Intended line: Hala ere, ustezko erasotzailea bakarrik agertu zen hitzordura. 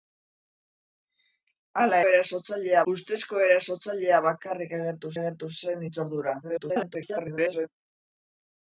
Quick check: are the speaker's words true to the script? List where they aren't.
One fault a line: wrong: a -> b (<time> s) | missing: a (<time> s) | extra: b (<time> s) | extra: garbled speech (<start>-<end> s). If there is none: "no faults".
wrong: ere -> erasotzailea (2.1 s)
extra: agertu (5.2 s)
extra: garbled speech (6.4-7.7 s)